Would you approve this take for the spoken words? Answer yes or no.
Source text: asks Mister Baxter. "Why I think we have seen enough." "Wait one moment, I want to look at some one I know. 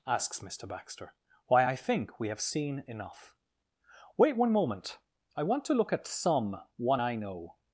yes